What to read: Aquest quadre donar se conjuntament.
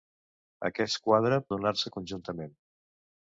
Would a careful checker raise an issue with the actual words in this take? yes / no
no